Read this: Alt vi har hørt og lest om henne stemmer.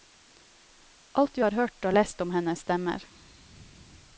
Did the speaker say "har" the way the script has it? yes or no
yes